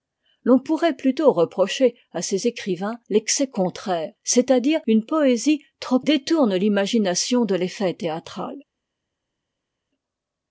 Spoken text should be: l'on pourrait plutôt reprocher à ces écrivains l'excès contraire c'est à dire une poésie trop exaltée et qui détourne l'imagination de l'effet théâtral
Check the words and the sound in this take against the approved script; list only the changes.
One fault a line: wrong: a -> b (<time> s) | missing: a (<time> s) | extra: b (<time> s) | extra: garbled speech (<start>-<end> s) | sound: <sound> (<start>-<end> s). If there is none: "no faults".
missing: exaltée et qui (6.0 s)